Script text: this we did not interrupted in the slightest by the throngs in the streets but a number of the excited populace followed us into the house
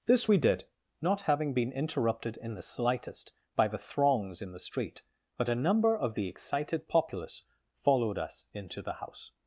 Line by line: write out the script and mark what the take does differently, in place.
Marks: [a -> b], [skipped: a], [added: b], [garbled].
this we did not [added: having been] interrupted in the slightest by the throngs in the [streets -> street] but a number of the excited populace followed us into the house